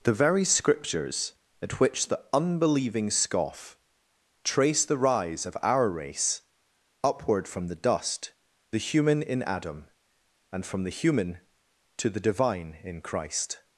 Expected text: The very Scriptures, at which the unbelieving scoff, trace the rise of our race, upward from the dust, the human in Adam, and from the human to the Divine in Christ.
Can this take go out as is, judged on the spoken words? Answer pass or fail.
pass